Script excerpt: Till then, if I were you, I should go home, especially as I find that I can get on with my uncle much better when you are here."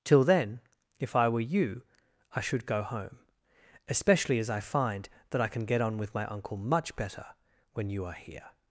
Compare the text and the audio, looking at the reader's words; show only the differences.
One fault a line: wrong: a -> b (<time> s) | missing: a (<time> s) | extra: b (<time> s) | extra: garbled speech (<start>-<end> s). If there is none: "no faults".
no faults